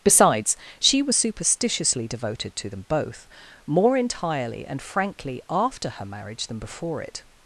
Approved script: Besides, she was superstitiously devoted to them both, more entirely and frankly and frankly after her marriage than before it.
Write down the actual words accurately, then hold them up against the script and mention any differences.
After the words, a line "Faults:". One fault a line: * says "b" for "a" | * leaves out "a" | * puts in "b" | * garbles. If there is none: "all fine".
Besides, she was superstitiously devoted to them both, more entirely and frankly after her marriage than before it.
Faults:
* leaves out "and frankly"